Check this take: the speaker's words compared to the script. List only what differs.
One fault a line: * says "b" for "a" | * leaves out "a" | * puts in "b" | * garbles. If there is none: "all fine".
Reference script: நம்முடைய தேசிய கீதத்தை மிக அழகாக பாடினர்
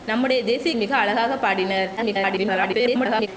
* leaves out "கீதத்தை"
* garbles